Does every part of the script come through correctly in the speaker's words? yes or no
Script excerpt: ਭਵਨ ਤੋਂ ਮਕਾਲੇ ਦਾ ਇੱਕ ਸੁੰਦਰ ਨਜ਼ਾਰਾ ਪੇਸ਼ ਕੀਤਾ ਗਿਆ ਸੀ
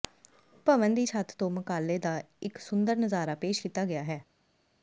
no